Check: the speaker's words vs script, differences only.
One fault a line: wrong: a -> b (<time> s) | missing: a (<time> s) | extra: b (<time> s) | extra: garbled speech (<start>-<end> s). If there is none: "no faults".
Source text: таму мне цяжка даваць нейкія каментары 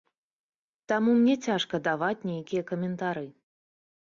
no faults